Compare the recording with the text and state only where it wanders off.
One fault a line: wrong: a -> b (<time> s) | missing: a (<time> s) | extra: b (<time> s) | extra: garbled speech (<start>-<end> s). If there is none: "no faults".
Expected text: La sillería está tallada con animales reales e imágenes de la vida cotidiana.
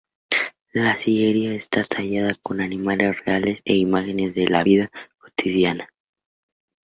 no faults